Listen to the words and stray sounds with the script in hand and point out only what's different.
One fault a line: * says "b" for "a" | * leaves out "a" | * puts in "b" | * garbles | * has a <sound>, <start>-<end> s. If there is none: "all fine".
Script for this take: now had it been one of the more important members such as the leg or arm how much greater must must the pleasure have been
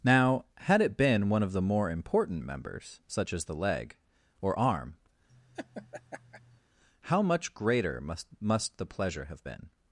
* has a laugh, 5.3-6.6 s